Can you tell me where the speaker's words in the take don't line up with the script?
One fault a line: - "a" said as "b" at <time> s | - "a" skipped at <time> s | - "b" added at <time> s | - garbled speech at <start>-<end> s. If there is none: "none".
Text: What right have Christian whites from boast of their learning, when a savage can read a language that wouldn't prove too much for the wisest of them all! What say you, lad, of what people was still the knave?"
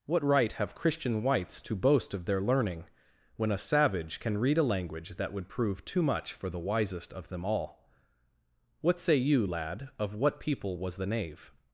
- "from" said as "to" at 1.6 s
- "wouldn't" said as "would" at 5.3 s
- "still" skipped at 11.0 s